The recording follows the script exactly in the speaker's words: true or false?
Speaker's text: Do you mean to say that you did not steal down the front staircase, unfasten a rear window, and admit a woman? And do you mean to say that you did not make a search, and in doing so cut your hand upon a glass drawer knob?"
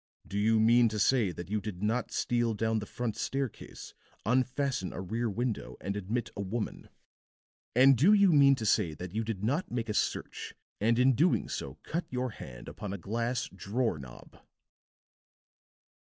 true